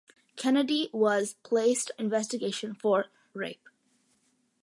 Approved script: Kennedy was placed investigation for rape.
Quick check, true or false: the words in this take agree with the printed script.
true